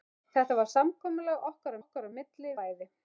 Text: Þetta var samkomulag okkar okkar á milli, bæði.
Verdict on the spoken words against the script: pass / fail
pass